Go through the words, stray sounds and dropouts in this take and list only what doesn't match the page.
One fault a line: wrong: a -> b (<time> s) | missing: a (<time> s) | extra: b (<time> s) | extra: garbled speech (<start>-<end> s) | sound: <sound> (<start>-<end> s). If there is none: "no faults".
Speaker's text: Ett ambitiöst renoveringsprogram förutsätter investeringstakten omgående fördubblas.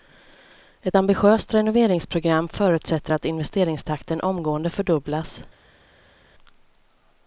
extra: att (3.1 s)